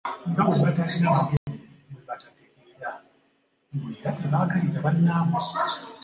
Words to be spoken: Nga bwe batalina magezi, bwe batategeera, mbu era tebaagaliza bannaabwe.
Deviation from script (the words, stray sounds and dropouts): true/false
true